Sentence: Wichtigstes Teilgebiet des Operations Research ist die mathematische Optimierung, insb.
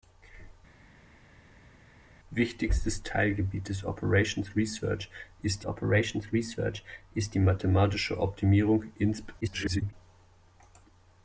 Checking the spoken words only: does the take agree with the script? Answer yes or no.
no